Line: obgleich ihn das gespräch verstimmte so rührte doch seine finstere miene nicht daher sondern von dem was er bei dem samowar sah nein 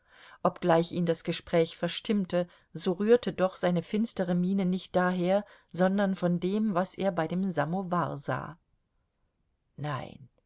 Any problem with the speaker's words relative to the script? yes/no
no